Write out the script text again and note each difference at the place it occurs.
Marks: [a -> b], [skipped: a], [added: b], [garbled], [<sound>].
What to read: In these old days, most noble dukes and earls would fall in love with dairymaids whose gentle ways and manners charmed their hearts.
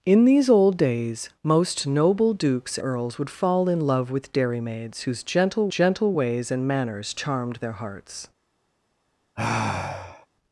In these old days, most noble dukes [skipped: and] earls would fall in love with dairymaids whose gentle [added: gentle] ways and manners charmed their hearts. [sigh]